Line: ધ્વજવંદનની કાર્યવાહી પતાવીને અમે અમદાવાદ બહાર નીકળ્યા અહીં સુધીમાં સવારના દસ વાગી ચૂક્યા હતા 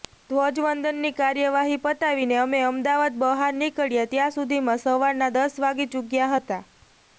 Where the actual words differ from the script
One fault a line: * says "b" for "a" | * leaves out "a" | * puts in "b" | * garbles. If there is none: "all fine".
* says "ત્યાં" for "અહીં"